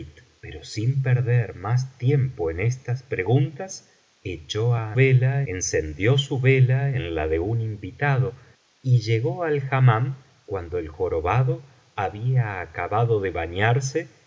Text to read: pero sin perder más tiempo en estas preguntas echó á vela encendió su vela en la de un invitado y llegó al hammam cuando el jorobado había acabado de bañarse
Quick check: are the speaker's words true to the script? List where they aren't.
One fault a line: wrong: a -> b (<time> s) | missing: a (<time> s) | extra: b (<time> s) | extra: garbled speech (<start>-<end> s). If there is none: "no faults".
no faults